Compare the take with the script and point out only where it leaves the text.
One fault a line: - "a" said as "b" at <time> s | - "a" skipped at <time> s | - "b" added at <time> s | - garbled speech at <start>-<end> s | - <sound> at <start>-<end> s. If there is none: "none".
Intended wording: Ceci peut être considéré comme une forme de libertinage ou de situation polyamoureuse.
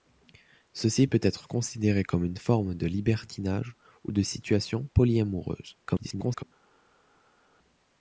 - garbled speech at 5.8-6.4 s